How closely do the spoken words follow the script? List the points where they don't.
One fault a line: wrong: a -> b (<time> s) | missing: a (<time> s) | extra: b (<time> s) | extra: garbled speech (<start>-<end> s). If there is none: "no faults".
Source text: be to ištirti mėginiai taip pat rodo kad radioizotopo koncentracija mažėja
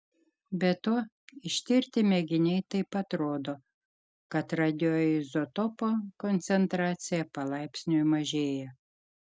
extra: palaipsniui (7.4 s)